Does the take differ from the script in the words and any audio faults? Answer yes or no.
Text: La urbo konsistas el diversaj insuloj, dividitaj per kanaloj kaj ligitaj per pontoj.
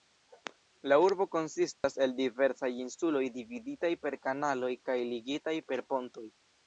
yes